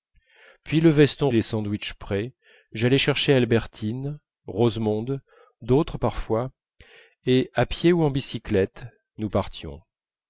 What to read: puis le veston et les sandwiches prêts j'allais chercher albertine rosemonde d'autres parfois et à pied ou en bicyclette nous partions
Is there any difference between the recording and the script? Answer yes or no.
no